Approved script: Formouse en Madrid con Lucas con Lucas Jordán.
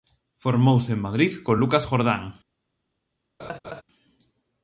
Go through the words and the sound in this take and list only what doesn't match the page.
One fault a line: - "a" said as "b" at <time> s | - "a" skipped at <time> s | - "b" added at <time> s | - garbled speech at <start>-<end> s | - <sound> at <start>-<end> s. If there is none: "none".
- "con Lucas" skipped at 1.8 s
- laugh at 3.4-3.8 s